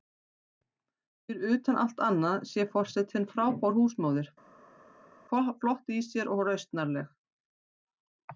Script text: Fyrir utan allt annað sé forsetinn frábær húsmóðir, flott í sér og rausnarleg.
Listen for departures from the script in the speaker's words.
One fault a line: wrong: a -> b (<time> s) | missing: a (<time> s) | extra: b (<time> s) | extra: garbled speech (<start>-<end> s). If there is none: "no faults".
no faults